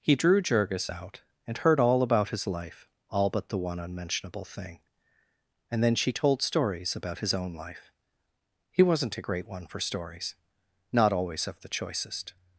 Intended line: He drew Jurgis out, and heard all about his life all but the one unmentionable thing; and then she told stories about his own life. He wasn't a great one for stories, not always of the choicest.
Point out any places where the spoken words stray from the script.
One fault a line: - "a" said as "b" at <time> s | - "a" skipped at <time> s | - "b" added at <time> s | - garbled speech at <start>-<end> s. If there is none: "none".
none